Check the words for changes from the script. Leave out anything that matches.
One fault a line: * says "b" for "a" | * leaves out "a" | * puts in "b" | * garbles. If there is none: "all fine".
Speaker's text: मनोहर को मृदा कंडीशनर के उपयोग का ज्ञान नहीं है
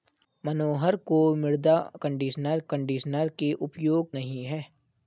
* puts in "कंडीशनर"
* leaves out "का ज्ञान"